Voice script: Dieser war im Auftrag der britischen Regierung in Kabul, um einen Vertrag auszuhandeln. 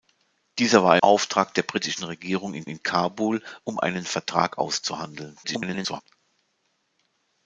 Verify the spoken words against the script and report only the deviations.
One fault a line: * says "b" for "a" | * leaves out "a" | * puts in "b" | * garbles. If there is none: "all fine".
* leaves out "im"
* puts in "in"
* garbles